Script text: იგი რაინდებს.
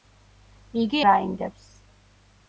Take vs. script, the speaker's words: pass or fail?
pass